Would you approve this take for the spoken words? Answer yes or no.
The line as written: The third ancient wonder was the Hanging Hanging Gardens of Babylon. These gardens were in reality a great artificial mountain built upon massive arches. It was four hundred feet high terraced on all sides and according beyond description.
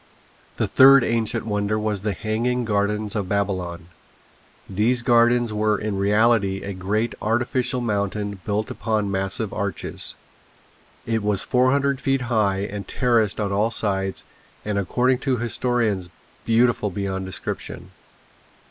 no